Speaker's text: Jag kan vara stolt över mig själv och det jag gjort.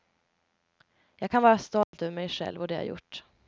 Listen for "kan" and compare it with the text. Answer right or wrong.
right